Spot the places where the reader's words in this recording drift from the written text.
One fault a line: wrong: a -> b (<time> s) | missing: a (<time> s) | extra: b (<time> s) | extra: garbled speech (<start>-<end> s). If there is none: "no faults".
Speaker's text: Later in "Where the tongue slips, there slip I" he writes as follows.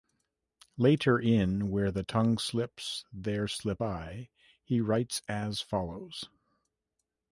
no faults